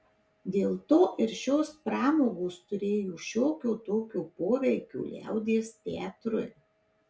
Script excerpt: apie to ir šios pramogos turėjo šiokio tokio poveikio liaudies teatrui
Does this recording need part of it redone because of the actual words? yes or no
yes